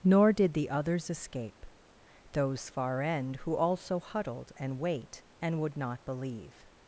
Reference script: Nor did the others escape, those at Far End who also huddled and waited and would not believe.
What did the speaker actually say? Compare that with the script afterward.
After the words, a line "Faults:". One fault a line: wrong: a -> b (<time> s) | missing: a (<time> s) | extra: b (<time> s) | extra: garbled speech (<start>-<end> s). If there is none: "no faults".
Nor did the others escape, those Far End who also huddled and wait and would not believe.
Faults:
missing: at (2.7 s)
wrong: waited -> wait (4.8 s)